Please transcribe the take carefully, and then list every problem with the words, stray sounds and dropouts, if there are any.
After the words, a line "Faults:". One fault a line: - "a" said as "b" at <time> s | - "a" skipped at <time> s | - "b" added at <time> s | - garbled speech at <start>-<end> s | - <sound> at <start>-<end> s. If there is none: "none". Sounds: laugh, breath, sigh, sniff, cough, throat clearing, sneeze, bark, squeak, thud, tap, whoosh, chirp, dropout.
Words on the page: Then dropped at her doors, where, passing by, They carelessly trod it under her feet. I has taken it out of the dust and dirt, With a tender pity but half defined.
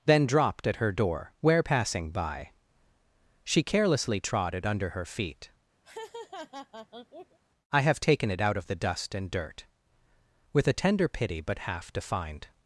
Then dropped at her door, where, passing by, She carelessly trod it under her feet. I have taken it out of the dust and dirt, With a tender pity but half defined.
Faults:
- "doors" said as "door" at 0.9 s
- "They" said as "She" at 3.4 s
- laugh at 5.8-7.4 s
- "has" said as "have" at 7.8 s